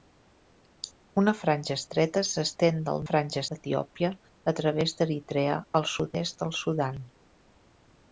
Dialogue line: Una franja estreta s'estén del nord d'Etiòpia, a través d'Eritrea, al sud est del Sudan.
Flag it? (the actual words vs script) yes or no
yes